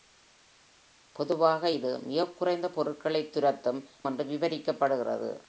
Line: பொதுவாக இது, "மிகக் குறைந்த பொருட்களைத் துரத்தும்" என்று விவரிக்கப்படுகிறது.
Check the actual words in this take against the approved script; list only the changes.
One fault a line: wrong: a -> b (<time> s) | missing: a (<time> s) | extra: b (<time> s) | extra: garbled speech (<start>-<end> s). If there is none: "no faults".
no faults